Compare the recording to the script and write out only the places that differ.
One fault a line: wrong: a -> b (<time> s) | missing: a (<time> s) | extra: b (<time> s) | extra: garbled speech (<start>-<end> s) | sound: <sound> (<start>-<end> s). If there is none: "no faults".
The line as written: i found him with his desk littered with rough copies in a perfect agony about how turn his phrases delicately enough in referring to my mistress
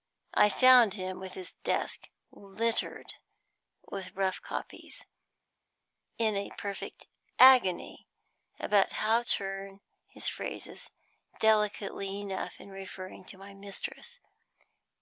no faults